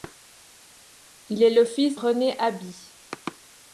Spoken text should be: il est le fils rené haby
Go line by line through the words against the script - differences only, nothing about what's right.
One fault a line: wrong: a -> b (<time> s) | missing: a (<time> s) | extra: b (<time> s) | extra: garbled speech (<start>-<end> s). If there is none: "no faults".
no faults